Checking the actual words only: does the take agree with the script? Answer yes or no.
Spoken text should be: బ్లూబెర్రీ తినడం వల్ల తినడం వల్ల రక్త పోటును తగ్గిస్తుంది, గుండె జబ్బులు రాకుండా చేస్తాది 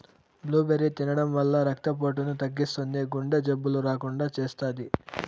no